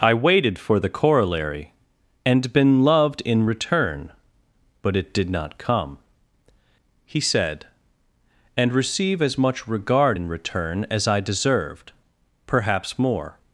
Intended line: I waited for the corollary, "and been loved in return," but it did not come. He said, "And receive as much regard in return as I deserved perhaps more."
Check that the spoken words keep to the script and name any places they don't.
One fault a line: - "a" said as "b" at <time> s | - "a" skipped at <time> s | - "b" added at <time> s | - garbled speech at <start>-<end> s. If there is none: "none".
none